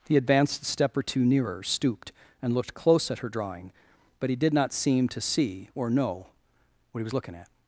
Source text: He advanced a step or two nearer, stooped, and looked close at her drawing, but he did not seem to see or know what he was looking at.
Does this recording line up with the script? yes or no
yes